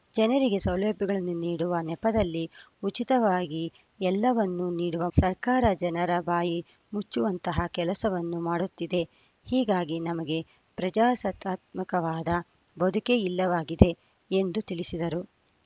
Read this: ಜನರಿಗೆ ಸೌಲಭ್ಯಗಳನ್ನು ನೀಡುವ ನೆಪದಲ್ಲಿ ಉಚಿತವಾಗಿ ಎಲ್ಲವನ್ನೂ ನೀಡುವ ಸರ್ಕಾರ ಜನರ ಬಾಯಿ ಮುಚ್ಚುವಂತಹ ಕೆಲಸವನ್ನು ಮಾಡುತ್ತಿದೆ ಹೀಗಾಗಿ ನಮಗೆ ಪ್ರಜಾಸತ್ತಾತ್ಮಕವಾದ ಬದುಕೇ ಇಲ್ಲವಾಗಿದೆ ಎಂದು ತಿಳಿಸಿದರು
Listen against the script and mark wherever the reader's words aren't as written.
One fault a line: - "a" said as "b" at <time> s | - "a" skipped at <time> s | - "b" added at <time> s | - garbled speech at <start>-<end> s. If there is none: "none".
none